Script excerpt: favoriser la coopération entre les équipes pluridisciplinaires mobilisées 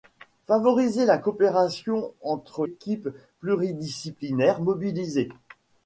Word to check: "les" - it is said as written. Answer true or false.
false